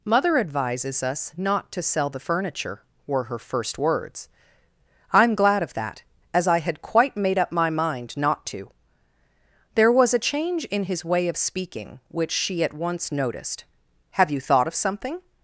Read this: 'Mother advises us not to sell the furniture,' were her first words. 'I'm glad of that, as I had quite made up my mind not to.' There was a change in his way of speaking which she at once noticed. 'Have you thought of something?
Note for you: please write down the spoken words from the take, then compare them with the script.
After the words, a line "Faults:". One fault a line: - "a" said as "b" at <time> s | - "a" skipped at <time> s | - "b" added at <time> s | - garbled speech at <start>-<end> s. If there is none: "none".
'Mother advises us not to sell the furniture,' were her first words. 'I'm glad of that, as I had quite made up my mind not to.' There was a change in his way of speaking which she at once noticed. 'Have you thought of something?
Faults:
none